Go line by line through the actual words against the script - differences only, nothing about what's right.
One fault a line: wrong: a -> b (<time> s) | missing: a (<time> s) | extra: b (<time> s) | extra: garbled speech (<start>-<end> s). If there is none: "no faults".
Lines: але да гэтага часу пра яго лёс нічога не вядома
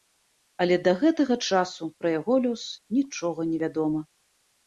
no faults